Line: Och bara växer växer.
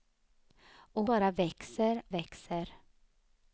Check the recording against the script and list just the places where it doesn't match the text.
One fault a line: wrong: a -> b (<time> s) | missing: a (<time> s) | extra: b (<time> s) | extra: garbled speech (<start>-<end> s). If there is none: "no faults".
no faults